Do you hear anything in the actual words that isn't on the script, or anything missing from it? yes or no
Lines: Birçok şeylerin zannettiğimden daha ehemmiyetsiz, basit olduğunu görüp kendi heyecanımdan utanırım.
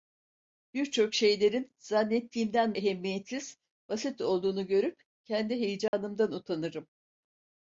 yes